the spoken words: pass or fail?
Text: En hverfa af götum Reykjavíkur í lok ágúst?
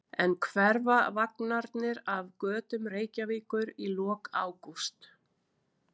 fail